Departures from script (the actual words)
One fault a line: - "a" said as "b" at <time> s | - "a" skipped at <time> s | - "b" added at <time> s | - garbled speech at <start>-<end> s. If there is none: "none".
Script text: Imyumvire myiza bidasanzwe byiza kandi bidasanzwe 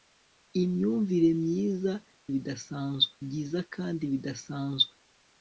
none